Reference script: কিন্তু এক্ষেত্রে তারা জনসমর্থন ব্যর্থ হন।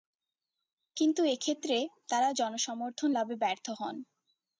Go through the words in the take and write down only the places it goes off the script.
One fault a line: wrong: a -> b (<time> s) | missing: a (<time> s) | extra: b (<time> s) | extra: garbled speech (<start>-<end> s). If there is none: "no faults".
extra: লাভে (3.1 s)